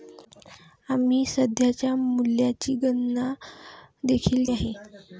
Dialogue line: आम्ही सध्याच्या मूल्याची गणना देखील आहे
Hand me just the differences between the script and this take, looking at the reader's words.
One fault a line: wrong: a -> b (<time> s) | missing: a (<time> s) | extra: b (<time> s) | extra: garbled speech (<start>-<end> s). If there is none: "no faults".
no faults